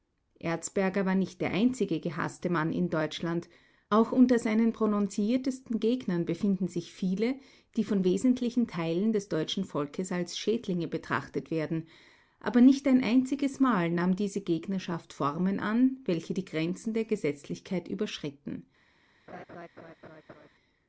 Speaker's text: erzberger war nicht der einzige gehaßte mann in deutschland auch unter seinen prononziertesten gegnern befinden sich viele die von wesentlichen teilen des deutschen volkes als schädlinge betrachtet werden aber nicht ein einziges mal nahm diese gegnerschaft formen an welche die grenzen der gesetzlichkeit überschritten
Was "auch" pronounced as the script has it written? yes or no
yes